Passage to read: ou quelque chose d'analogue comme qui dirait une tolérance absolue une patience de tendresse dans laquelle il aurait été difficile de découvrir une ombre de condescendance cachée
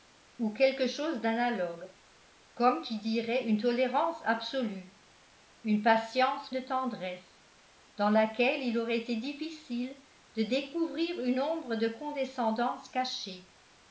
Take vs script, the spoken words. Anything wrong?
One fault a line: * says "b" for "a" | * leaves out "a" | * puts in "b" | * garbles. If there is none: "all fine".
all fine